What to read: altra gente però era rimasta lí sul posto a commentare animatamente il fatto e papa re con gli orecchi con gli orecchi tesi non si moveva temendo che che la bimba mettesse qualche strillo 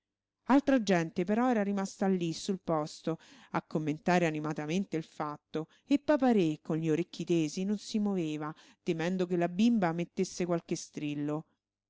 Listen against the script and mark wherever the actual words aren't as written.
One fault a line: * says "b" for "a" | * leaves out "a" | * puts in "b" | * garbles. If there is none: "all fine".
* leaves out "con gli orecchi"
* leaves out "che"